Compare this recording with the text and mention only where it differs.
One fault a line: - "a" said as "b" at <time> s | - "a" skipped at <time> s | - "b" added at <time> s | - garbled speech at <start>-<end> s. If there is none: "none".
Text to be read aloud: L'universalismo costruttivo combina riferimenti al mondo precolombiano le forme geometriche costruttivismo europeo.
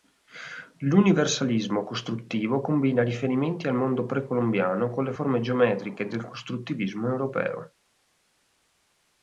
- "con" added at 4.9 s
- "del" added at 6.1 s